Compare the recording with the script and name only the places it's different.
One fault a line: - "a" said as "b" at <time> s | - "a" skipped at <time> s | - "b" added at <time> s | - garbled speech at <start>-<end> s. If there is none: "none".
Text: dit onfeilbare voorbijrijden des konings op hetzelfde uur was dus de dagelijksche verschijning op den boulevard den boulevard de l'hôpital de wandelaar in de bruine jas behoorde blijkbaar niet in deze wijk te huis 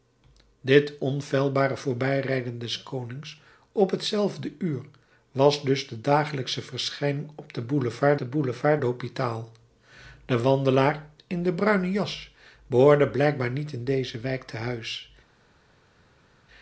none